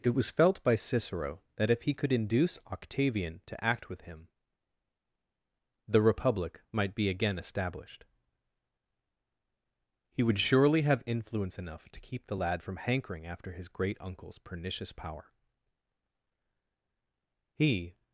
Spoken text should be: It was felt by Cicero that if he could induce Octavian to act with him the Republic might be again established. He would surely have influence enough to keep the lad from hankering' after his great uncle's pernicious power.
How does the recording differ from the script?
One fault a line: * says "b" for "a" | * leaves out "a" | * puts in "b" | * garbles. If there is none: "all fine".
* puts in "He"